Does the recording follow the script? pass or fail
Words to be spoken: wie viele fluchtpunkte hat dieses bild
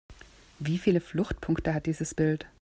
pass